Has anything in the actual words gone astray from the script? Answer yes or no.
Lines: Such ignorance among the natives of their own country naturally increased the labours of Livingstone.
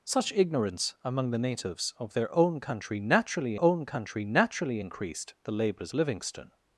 yes